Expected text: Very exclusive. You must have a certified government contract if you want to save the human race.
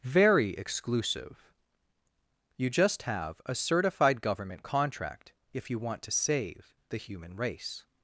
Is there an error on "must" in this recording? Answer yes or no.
yes